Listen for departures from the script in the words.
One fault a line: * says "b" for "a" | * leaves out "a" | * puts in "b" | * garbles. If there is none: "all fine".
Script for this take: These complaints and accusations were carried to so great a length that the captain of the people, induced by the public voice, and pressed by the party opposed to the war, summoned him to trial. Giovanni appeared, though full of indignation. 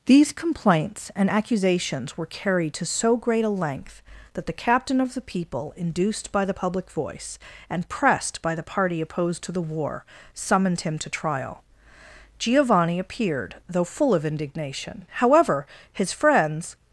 * puts in "However his friends"